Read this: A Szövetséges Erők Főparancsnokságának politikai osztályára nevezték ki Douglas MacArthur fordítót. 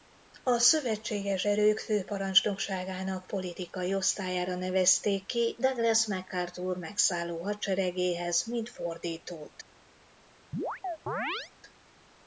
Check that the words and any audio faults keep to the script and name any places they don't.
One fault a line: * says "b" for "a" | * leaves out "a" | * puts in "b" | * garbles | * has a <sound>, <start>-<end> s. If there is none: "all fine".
* puts in "megszálló hadseregéhez mint"
* has a chirp, 10.5-11.5 s